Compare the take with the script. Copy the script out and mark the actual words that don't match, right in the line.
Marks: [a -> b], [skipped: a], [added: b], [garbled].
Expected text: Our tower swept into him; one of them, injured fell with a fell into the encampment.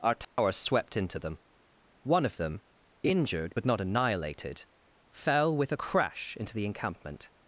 Our tower swept into [him; -> them] one of them, injured [added: but not annihilated] fell with a [fell -> crash] into the encampment.